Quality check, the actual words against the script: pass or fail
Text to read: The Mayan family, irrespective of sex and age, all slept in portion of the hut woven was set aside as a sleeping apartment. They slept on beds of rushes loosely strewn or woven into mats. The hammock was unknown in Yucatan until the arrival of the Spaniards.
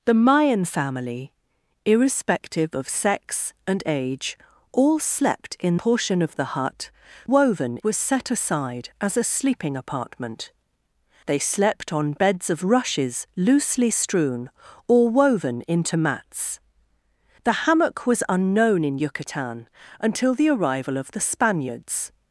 pass